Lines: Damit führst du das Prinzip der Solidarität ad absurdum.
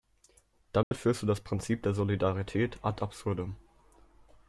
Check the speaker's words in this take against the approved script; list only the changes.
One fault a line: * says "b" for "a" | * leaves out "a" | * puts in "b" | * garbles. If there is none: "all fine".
all fine